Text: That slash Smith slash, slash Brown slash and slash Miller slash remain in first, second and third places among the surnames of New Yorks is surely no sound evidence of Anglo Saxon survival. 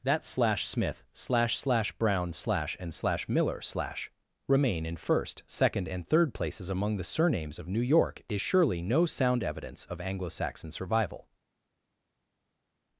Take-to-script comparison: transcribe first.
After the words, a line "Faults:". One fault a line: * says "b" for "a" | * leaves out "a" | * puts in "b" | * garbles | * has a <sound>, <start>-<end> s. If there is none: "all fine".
That slash Smith slash, slash Brown slash and slash Miller slash remain in first, second and third places among the surnames of New York is surely no sound evidence of Anglo Saxon survival.
Faults:
* says "York" for "Yorks"